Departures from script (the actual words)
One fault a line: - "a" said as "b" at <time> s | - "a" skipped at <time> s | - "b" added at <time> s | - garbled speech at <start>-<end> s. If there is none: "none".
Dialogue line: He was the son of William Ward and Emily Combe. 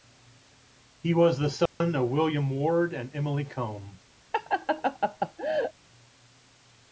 none